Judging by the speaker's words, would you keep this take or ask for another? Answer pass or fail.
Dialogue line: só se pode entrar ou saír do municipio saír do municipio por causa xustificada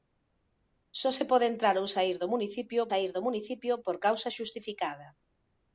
pass